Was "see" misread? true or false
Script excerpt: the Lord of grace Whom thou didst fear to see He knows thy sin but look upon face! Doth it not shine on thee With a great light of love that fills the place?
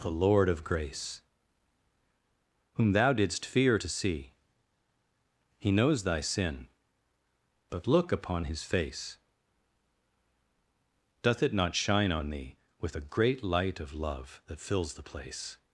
false